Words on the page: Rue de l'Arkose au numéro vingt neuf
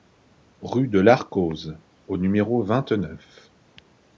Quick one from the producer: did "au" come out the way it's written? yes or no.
yes